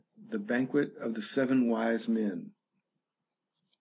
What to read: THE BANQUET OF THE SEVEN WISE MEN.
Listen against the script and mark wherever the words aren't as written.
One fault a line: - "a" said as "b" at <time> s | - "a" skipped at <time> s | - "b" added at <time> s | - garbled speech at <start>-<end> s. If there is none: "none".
none